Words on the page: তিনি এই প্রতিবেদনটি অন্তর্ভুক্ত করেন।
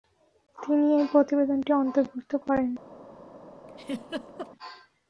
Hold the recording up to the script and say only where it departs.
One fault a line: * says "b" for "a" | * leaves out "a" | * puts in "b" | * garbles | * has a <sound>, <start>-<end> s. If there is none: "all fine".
* has a laugh, 3.7-4.5 s